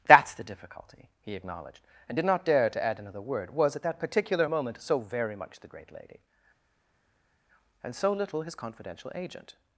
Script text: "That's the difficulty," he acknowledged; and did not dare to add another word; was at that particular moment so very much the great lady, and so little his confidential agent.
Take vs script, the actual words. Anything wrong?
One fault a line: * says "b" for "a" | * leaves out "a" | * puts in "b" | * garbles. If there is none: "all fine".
all fine